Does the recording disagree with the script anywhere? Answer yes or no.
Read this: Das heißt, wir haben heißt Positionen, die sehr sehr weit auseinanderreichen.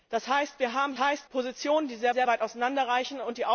no